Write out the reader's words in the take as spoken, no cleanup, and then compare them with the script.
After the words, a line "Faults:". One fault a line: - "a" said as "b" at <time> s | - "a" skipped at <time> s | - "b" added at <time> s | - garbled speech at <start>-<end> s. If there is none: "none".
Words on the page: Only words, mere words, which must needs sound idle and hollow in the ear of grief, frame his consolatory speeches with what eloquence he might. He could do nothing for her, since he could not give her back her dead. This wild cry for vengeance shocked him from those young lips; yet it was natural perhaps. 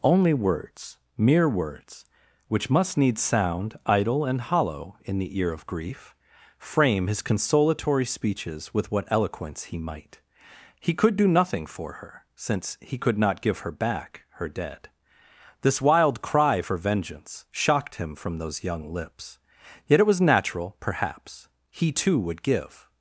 Only words, mere words, which must needs sound idle and hollow in the ear of grief, frame his consolatory speeches with what eloquence he might. He could do nothing for her, since he could not give her back her dead. This wild cry for vengeance shocked him from those young lips; yet it was natural perhaps. He too would give
Faults:
- "He too would give" added at 21.7 s